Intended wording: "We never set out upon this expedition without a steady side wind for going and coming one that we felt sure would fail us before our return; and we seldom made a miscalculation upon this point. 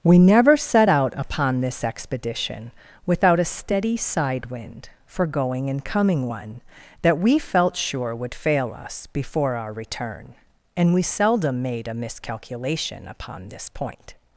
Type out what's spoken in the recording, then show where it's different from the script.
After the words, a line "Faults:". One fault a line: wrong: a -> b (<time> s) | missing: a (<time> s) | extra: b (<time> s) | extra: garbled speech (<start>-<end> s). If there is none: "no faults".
"We never set out upon this expedition without a steady side wind for going and coming one that we felt sure would fail us before our return; and we seldom made a miscalculation upon this point.
Faults:
no faults